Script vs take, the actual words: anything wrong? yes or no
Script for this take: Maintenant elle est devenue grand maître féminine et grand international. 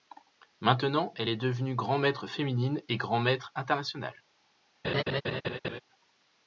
yes